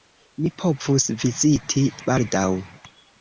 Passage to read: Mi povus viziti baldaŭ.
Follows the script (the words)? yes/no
yes